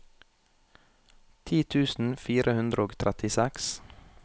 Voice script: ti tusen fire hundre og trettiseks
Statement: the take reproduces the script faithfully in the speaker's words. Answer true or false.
true